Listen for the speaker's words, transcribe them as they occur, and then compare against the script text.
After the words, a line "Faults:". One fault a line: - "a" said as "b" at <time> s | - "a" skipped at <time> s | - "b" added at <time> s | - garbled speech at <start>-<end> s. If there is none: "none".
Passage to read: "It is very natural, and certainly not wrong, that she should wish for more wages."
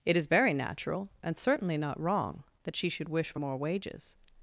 "It is very natural, and certainly not wrong, that she should wish for more wages."
Faults:
none